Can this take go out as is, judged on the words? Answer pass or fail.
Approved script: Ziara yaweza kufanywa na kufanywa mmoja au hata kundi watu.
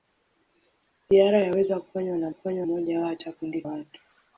pass